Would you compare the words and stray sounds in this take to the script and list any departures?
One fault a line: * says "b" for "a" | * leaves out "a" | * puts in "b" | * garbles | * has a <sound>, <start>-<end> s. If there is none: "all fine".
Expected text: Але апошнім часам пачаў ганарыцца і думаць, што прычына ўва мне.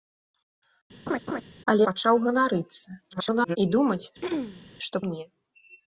* has a laugh, 1.1-1.4 s
* leaves out "апошнім часам"
* garbles
* has a throat clearing, 4.2-4.7 s
* leaves out "прычына ўва"